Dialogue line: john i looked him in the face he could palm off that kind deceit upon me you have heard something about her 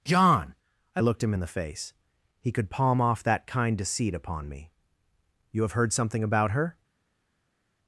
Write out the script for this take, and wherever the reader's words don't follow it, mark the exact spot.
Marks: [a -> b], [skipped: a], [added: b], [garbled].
john i looked him in the face he could palm off that kind deceit upon me you have heard something about her